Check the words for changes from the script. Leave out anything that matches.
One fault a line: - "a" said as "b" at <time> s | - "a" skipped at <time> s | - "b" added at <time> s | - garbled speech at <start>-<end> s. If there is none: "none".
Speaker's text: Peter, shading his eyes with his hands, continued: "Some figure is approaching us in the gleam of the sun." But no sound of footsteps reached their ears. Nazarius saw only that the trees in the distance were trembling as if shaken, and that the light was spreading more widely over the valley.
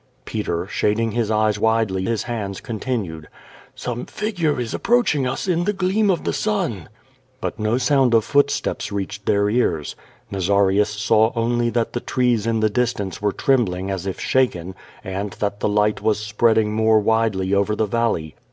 - "with" said as "widely" at 1.6 s